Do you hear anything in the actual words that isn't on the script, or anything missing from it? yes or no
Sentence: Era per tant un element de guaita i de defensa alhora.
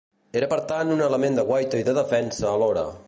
no